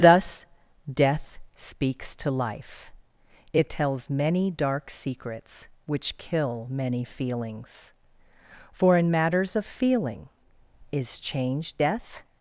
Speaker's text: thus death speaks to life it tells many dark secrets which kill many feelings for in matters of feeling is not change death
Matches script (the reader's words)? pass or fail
fail